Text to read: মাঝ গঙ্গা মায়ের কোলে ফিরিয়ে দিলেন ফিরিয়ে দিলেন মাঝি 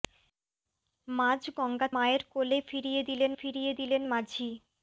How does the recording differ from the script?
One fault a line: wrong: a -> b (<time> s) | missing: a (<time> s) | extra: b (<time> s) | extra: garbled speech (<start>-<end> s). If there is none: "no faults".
no faults